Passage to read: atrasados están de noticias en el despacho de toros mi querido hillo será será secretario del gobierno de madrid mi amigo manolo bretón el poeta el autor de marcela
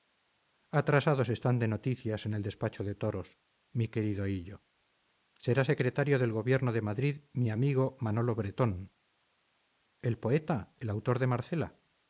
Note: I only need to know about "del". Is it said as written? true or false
true